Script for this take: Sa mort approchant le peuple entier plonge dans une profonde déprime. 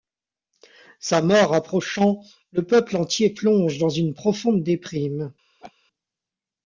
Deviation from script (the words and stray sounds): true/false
true